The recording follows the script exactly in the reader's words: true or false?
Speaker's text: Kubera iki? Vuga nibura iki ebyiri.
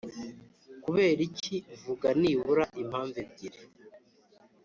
false